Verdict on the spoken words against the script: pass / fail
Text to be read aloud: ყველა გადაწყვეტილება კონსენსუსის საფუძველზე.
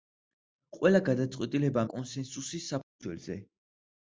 pass